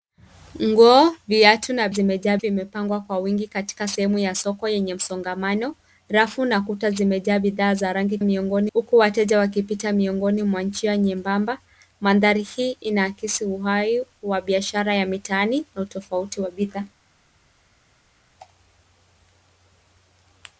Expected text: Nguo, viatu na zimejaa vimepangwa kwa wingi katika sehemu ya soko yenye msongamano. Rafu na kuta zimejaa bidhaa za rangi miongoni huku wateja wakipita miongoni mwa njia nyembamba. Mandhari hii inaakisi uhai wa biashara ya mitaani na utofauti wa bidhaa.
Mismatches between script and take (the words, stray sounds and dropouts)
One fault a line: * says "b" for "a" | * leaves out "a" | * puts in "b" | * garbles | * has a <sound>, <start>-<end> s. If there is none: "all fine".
all fine